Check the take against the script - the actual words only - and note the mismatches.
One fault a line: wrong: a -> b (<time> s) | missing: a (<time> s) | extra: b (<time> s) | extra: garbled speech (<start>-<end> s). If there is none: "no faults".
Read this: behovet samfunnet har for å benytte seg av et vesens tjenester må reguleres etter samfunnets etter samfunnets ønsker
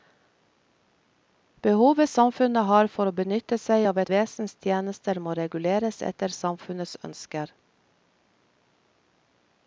missing: etter samfunnets (7.0 s)